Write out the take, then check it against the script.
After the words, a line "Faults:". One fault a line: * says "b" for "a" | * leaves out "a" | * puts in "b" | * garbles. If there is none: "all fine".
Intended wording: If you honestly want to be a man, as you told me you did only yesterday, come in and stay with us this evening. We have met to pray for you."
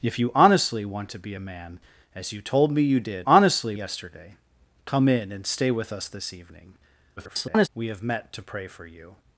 If you honestly want to be a man, as you told me you did honestly yesterday, come in and stay with us this evening. [garbled] We have met to pray for you."
Faults:
* says "honestly" for "only"
* garbles